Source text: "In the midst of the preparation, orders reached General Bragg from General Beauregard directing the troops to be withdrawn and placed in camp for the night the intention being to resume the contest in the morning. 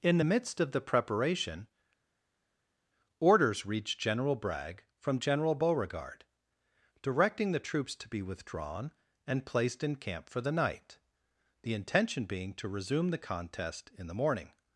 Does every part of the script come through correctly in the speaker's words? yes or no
yes